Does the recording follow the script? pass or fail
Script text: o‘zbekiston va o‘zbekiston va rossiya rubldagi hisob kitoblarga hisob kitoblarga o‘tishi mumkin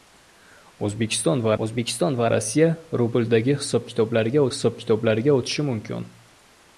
pass